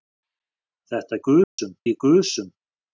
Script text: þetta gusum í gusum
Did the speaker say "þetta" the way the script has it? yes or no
yes